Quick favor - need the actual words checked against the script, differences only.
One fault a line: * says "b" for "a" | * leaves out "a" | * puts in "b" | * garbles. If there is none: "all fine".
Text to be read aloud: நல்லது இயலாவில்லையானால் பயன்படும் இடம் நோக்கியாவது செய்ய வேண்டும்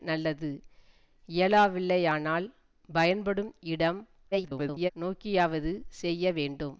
* garbles